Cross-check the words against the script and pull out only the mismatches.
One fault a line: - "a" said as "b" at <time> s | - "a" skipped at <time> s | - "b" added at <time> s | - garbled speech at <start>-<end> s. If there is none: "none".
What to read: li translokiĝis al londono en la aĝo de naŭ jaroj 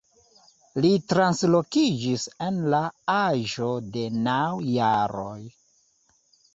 - "al londono" skipped at 2.2 s